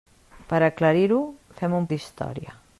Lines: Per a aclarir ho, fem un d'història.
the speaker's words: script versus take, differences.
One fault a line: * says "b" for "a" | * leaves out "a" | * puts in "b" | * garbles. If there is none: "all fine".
all fine